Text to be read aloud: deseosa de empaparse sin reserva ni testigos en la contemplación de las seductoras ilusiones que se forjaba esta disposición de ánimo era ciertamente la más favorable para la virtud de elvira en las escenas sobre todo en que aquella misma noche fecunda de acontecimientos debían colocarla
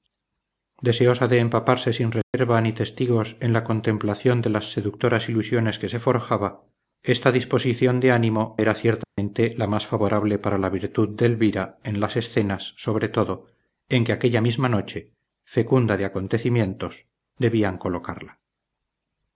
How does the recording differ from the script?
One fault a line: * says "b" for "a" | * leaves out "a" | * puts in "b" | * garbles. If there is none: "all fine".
all fine